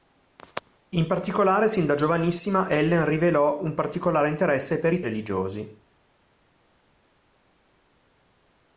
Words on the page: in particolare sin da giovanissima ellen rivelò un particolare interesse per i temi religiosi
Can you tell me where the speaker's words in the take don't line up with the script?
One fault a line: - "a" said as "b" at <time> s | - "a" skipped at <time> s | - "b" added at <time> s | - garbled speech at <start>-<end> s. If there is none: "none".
- "temi" skipped at 5.0 s